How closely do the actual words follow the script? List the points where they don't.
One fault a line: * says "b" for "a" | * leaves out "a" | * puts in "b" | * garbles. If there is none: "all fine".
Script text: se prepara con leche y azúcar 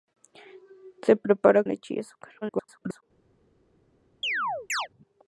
* leaves out "con"
* garbles